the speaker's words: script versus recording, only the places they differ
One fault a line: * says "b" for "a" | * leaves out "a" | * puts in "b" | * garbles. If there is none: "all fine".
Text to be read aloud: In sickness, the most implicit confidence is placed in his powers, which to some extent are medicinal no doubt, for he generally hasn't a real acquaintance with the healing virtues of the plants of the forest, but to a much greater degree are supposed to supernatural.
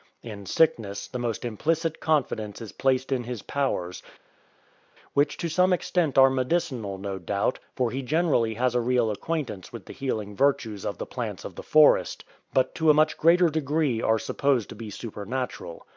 * says "has" for "hasn't"
* puts in "be"